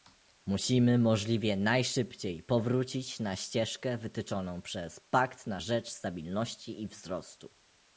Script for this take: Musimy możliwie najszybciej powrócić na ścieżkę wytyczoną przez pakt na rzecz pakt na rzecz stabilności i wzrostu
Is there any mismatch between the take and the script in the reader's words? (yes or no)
yes